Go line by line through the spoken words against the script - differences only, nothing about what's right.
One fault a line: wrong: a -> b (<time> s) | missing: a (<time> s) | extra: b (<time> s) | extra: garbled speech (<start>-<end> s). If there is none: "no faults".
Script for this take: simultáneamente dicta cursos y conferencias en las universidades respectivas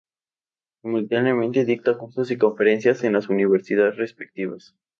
no faults